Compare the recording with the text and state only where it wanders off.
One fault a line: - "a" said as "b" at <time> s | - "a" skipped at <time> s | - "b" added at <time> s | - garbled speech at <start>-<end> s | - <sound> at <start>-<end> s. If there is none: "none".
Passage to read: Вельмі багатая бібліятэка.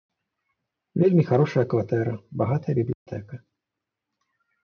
- "харошая кватэра" added at 1.3 s
- dropout at 2.9-3.1 s